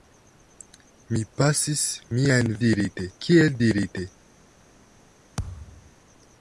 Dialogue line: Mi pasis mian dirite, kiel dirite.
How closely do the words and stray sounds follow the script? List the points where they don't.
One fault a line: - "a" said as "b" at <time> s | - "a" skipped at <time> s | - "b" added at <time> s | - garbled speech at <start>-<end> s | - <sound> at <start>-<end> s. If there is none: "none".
- thud at 5.4-5.9 s